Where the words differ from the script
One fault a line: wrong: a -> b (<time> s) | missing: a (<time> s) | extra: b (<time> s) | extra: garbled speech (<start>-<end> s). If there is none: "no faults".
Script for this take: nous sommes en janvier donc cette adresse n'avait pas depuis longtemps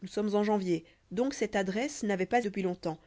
no faults